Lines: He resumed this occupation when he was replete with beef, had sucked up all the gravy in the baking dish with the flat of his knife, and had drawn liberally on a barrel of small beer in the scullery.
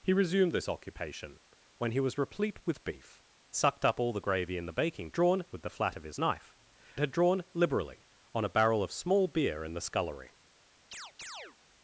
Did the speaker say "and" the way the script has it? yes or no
no